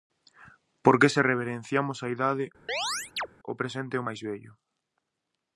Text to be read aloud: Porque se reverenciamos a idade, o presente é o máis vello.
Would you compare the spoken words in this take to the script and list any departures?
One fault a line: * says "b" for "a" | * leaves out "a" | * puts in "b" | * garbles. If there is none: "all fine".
all fine